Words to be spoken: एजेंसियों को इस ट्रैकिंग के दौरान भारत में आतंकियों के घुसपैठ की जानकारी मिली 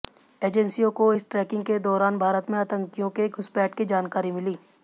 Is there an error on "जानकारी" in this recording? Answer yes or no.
no